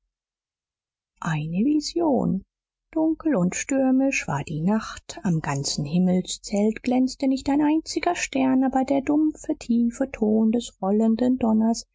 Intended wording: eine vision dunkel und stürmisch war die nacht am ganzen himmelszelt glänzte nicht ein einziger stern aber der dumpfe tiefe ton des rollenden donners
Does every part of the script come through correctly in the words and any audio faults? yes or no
yes